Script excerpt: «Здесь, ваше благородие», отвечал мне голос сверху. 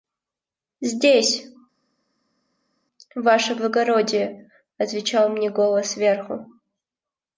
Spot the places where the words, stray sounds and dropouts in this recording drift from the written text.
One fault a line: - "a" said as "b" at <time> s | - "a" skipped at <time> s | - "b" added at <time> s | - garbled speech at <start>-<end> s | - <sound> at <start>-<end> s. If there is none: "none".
none